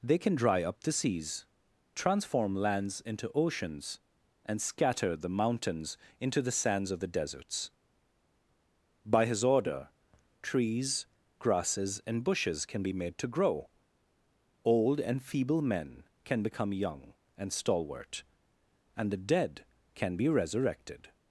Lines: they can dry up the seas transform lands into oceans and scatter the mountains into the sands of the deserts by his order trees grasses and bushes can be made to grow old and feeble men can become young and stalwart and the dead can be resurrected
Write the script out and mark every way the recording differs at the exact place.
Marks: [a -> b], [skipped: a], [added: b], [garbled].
they can dry up the seas transform lands into oceans and scatter the mountains into the sands of the deserts by his order trees grasses and bushes can be made to grow old and feeble men can become young and stalwart and the dead can be resurrected